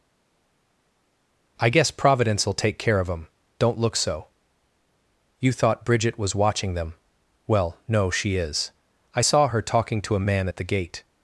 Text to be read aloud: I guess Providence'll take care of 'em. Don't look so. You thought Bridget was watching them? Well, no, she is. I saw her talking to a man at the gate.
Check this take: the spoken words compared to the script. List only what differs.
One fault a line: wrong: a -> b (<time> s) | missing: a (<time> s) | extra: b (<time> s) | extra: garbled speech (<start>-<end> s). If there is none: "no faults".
no faults